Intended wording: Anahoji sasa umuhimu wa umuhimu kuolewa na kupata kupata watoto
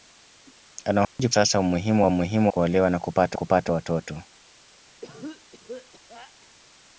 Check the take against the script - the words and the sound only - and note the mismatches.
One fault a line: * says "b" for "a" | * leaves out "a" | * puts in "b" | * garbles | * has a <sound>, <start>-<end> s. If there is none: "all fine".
* has a dropout, 1.0-1.2 s
* has a cough, 5.0-6.5 s